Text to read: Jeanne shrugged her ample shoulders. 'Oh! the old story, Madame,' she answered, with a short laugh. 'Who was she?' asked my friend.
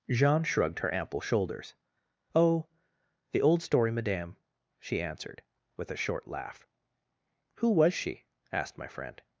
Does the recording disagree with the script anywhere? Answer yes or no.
no